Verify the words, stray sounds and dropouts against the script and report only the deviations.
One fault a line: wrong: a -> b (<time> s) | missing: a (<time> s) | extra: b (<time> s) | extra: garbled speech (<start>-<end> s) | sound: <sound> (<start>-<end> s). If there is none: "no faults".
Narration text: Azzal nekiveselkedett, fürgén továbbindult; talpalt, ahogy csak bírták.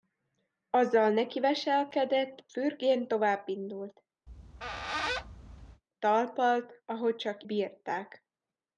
sound: squeak (4.3-5.8 s)